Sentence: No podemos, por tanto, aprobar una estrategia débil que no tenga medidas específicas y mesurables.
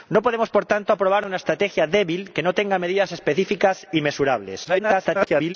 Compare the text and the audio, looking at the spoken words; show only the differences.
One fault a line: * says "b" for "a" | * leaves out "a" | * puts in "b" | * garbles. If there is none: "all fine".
* garbles